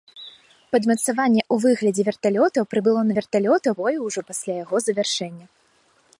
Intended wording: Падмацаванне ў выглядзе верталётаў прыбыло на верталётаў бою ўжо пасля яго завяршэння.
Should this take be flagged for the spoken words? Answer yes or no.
no